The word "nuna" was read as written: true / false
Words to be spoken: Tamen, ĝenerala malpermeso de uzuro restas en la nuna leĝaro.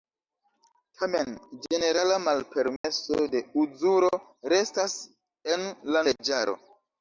false